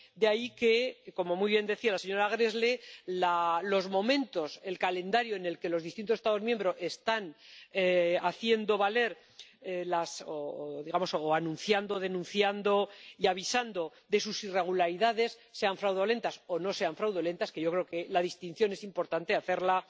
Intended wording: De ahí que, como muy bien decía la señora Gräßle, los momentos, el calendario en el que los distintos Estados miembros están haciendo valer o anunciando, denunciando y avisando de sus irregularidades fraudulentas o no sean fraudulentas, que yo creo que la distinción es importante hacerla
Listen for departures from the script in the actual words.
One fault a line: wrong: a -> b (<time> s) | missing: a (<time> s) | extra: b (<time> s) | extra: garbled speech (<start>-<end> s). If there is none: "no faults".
extra: sean (15.5 s)